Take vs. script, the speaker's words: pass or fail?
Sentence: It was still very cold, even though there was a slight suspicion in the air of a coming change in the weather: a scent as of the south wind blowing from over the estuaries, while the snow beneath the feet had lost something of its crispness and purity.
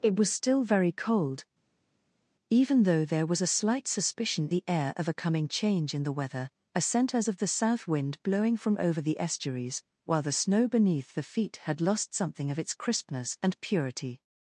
fail